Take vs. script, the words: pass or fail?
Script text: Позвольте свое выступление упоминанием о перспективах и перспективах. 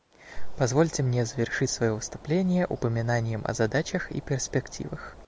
fail